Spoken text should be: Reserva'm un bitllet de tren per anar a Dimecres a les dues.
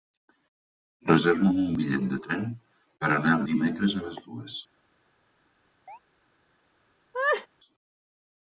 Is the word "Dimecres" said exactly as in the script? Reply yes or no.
yes